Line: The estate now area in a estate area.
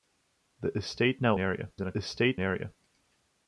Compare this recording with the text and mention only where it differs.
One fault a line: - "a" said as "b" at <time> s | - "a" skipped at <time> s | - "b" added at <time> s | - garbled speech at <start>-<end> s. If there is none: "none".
none